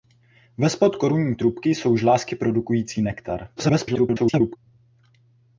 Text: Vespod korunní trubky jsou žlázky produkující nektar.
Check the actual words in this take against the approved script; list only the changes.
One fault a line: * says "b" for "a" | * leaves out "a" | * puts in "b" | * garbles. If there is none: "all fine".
* garbles